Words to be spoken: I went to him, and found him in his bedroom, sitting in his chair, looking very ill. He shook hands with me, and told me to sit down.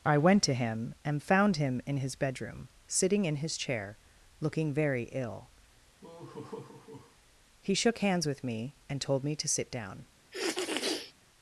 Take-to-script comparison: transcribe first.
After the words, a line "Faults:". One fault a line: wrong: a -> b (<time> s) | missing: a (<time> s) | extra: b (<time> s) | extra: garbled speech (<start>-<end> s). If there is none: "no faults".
I went to him, and found him in his bedroom, sitting in his chair, looking very ill. He shook hands with me, and told me to sit down.
Faults:
no faults